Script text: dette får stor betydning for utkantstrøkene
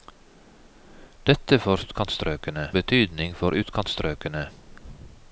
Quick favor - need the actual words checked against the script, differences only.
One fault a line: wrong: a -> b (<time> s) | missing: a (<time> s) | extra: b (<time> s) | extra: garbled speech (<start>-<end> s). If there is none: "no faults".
wrong: stor -> utkantstrøkene (1.8 s)